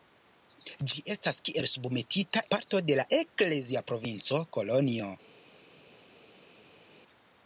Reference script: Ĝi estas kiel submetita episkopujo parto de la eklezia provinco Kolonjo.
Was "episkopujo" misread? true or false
true